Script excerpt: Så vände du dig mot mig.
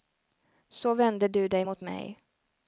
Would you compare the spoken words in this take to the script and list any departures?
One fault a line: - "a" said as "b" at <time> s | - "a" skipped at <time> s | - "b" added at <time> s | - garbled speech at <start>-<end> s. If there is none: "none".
none